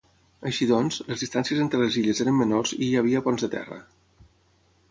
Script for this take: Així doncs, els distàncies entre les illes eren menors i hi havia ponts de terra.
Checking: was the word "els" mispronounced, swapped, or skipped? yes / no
yes